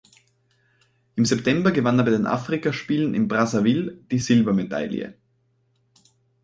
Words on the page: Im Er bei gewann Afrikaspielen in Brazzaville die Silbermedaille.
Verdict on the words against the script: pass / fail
fail